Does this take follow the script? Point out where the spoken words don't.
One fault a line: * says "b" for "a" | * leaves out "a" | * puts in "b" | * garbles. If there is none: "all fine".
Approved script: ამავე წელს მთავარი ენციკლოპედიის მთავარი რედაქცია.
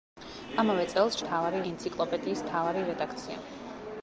all fine